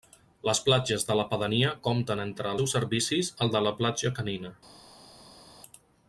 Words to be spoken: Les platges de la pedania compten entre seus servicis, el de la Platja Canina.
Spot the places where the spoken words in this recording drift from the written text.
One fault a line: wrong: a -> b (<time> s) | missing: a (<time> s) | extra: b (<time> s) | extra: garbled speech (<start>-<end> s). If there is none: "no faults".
no faults